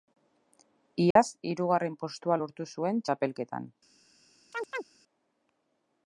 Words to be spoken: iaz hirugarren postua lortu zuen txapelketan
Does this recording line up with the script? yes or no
yes